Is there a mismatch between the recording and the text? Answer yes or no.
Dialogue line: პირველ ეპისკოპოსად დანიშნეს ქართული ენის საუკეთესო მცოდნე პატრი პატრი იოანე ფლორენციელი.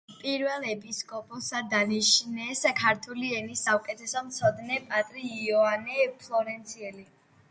yes